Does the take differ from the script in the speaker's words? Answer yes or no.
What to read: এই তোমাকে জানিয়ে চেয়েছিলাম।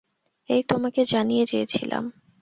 no